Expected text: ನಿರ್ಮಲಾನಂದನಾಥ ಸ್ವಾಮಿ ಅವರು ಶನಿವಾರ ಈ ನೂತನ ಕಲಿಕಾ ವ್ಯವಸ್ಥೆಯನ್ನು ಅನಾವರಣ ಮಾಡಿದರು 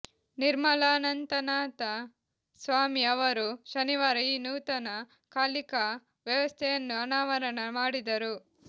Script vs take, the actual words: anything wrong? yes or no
no